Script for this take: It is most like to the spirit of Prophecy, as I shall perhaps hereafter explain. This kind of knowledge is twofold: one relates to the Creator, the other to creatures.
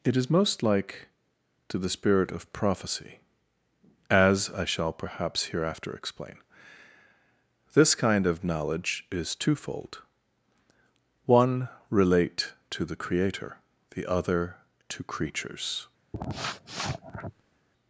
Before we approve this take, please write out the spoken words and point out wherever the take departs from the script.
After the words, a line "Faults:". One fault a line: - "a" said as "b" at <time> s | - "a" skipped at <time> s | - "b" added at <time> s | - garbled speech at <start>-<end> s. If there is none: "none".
It is most like to the spirit of Prophecy, as I shall perhaps hereafter explain. This kind of knowledge is twofold: one relate to the Creator, the other to creatures.
Faults:
- "relates" said as "relate" at 11.9 s